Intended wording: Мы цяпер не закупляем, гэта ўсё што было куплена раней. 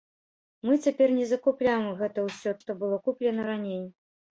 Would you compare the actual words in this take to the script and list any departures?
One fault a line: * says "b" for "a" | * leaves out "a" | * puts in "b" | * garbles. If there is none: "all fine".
all fine